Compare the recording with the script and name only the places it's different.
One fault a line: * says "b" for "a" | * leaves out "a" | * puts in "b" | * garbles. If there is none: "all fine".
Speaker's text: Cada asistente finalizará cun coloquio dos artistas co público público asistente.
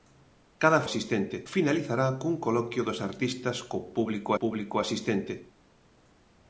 all fine